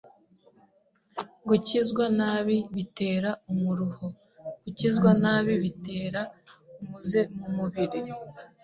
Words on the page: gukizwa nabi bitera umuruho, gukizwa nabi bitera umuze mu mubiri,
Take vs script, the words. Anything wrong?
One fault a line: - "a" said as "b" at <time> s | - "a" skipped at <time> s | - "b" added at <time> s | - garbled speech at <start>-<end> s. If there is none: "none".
none